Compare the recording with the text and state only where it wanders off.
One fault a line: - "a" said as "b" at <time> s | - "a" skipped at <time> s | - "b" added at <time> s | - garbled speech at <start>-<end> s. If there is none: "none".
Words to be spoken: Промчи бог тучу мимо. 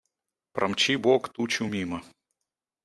none